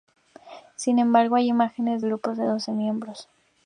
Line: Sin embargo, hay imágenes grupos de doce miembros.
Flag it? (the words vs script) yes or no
no